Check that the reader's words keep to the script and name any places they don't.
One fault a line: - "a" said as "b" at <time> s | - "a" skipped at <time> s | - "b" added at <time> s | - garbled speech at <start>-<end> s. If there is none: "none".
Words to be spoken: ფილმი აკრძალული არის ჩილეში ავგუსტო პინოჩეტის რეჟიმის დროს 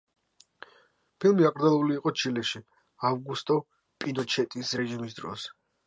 - "არის" said as "იყო" at 2.0 s